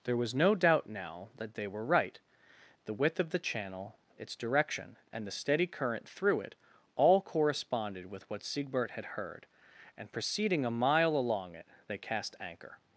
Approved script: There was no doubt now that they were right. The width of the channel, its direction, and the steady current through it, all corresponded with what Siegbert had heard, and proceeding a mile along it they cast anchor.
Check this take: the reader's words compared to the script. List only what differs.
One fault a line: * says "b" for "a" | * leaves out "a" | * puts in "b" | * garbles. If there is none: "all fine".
all fine